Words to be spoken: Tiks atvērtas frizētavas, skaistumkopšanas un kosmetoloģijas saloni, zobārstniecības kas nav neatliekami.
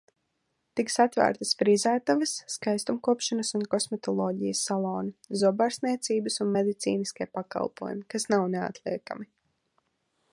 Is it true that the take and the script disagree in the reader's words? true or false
true